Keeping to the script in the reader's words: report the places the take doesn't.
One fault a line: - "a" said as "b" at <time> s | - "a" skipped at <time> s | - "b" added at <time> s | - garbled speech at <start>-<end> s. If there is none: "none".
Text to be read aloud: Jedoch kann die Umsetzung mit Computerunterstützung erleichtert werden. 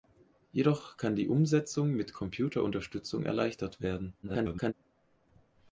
- garbled speech at 4.2-4.7 s